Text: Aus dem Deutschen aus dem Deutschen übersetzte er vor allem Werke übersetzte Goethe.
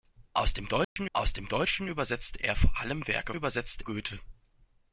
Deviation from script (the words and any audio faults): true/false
true